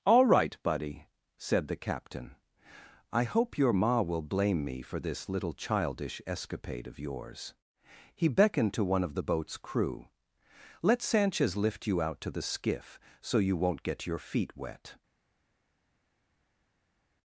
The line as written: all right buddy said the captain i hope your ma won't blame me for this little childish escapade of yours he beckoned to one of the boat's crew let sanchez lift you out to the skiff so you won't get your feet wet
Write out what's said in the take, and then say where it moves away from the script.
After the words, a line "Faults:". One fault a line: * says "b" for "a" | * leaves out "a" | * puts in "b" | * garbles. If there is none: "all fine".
all right buddy said the captain i hope your ma will blame me for this little childish escapade of yours he beckoned to one of the boat's crew let sanchez lift you out to the skiff so you won't get your feet wet
Faults:
* says "will" for "won't"